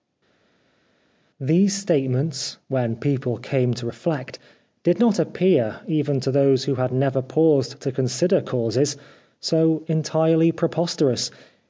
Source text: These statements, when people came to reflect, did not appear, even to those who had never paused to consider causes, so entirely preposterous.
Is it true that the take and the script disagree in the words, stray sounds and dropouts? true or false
false